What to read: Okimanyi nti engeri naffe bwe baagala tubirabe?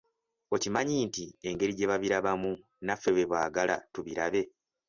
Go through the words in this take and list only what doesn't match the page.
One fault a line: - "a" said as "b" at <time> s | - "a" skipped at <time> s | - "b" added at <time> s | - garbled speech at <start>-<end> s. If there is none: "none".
- "gye babirabamu" added at 1.8 s